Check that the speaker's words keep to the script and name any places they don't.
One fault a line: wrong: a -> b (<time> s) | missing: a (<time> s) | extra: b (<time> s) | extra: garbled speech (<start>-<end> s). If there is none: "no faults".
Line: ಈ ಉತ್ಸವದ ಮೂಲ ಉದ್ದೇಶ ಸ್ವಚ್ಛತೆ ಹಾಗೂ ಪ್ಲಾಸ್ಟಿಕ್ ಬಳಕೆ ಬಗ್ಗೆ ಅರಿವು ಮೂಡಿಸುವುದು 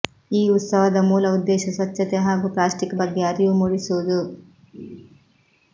missing: ಬಳಕೆ (3.0 s)